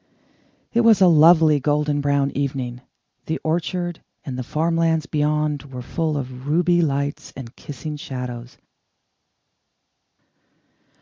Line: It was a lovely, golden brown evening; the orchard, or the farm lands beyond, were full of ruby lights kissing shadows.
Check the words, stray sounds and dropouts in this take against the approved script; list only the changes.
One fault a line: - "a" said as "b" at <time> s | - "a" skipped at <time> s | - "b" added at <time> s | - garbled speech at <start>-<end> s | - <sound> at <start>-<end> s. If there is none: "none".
- "or" said as "and" at 4.3 s
- "and" added at 7.3 s